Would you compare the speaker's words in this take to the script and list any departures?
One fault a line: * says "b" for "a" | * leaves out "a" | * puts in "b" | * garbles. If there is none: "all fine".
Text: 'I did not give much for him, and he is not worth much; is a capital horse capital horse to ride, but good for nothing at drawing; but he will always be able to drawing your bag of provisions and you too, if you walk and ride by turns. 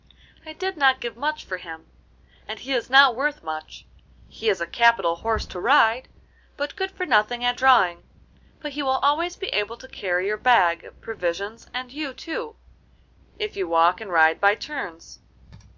* puts in "he"
* leaves out "capital horse"
* says "carry" for "drawing"